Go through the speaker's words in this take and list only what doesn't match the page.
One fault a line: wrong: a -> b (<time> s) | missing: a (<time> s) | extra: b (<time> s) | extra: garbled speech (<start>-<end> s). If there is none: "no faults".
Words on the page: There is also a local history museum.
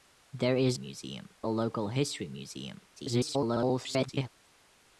wrong: also -> museum (0.7 s)
extra: garbled speech (3.0-4.3 s)